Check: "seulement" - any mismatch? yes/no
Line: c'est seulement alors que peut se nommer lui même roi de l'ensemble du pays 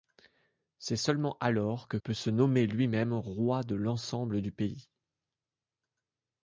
no